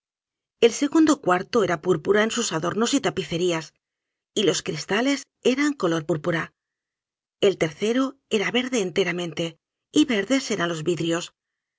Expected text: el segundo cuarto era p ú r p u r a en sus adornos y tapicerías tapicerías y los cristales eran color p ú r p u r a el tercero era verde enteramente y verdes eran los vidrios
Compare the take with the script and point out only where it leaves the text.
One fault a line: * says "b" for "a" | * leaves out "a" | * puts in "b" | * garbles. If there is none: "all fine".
* leaves out "tapicerías"